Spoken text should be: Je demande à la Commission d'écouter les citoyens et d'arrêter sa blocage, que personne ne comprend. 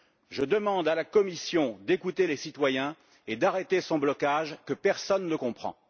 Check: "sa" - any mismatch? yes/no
yes